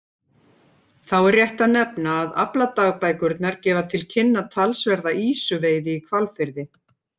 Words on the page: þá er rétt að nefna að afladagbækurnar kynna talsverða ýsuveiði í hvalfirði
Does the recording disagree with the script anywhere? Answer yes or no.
yes